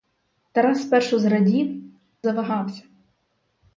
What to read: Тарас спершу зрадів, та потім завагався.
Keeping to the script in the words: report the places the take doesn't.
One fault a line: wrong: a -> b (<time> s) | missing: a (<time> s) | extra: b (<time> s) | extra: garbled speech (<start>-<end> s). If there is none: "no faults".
missing: та потім (1.8 s)